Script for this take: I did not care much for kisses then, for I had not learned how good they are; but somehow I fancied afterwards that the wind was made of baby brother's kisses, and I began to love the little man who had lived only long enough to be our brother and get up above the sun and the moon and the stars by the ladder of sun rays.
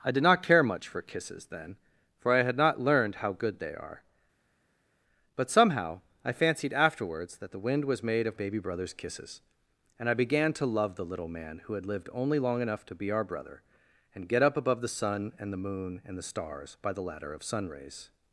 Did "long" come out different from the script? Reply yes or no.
no